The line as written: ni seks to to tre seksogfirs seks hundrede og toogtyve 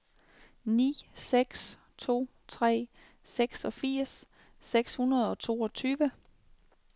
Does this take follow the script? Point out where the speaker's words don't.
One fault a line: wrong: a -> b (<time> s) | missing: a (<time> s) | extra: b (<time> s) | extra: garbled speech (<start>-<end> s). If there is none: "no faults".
missing: to (2.3 s)